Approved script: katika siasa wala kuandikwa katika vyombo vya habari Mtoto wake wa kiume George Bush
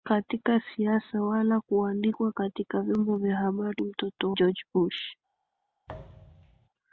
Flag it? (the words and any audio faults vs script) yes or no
yes